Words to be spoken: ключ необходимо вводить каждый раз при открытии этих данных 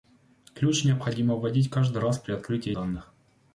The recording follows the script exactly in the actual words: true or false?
false